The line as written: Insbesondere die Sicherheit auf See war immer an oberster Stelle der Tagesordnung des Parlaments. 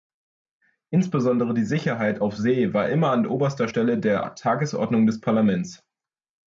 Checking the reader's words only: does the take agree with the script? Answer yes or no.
yes